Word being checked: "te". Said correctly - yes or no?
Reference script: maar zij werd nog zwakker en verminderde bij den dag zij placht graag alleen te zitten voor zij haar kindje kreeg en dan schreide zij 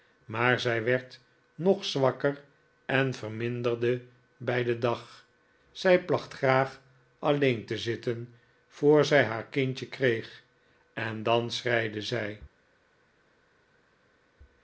yes